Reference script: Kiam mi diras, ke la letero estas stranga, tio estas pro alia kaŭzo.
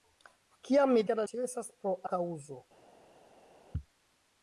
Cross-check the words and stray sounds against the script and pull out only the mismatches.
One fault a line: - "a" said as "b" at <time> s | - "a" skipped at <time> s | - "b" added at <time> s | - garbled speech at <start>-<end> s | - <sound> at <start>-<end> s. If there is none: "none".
- "diras" skipped at 1.0 s
- "letero estas stranga" skipped at 1.3 s
- "alia" skipped at 2.0 s